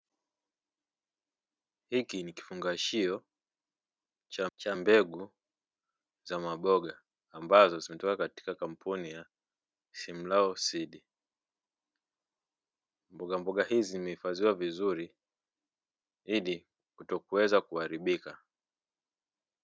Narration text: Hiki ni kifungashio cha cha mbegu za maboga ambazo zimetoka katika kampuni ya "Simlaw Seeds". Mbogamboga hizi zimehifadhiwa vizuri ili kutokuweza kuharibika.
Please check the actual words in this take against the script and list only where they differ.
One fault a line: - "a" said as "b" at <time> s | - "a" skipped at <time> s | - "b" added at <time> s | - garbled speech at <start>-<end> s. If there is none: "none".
none